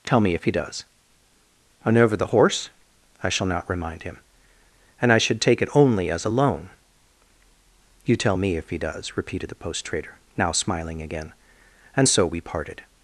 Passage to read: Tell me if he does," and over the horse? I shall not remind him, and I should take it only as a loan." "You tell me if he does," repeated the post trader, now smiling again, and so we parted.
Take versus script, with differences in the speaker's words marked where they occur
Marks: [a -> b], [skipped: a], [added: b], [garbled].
Tell me if he does," and over the horse? I shall not remind him, and I should take it only as a loan." "You tell me if he does," repeated the post trader, now smiling again, and so we parted.